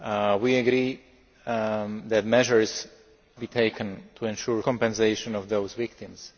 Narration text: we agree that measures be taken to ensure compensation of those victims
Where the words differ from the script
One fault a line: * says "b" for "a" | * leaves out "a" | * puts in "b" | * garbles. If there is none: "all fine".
all fine